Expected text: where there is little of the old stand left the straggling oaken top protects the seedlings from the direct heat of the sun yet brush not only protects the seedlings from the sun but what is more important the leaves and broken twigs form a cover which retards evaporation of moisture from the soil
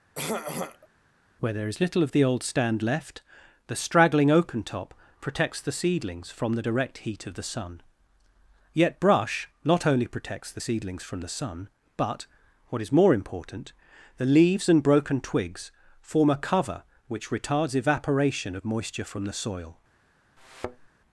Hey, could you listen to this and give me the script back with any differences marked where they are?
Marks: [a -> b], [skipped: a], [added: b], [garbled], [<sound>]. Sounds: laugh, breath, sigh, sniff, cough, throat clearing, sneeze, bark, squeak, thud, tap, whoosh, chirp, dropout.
[throat clearing] where there is little of the old stand left the straggling oaken top protects the seedlings from the direct heat of the sun yet brush not only protects the seedlings from the sun but what is more important the leaves and broken twigs form a cover which retards evaporation of moisture from the soil [thud]